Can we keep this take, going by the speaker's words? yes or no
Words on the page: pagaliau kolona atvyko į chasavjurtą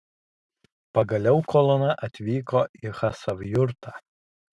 yes